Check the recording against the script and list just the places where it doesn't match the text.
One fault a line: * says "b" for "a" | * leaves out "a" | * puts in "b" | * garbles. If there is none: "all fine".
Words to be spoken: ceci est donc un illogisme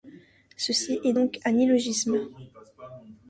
all fine